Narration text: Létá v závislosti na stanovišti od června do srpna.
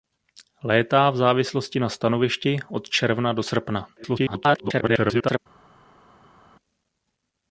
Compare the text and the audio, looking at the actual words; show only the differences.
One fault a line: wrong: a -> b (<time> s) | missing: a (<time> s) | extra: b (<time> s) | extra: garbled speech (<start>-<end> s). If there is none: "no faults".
extra: garbled speech (4.0-5.4 s)